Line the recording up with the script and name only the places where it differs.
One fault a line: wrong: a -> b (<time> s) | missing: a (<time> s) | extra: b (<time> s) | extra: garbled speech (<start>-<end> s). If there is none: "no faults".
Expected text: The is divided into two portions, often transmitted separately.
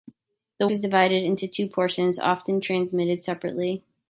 no faults